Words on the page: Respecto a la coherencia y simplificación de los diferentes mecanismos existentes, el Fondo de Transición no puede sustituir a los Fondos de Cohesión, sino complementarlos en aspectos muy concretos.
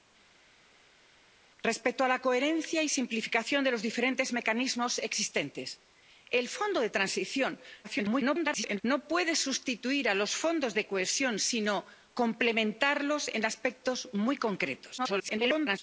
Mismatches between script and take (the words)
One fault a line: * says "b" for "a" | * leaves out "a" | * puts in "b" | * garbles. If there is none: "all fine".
* garbles
* garbles